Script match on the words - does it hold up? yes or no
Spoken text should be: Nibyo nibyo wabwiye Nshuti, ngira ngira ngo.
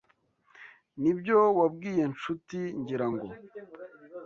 no